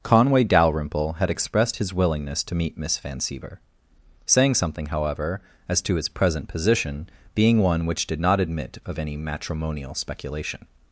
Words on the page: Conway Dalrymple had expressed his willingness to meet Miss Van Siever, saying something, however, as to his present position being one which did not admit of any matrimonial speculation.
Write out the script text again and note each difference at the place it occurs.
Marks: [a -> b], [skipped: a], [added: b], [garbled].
Conway Dalrymple had expressed his willingness to meet Miss Van Siever, saying something, however, as to his present position being one which did not admit of any matrimonial speculation.